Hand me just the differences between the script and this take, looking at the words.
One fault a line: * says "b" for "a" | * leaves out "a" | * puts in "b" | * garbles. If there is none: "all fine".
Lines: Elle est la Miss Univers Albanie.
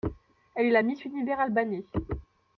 all fine